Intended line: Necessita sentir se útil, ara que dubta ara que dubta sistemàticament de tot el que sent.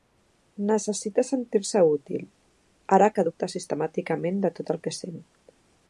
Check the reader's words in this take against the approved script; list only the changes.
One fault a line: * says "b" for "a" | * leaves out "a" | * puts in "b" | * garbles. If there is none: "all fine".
* leaves out "ara que dubta"